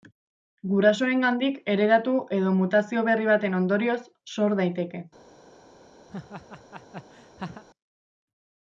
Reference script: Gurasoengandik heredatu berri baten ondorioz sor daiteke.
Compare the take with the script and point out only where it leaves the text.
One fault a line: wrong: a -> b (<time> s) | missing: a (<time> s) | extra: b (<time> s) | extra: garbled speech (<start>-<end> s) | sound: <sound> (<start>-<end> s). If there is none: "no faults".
extra: edo mutazio (2.4 s)
sound: laugh (6.1-7.6 s)